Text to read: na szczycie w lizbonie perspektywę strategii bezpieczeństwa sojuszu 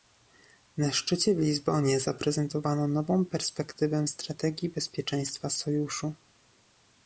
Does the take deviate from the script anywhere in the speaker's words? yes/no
yes